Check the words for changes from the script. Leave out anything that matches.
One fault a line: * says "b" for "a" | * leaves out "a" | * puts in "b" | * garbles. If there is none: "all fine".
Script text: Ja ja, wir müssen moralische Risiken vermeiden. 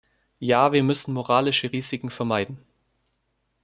* leaves out "ja"